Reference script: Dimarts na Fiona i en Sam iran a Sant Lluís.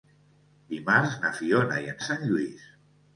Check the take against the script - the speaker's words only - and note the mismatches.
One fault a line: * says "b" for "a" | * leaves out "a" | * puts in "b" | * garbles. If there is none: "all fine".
* leaves out "Sam iran"